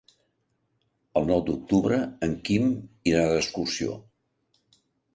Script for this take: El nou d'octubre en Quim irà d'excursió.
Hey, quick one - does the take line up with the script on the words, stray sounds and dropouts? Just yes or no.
yes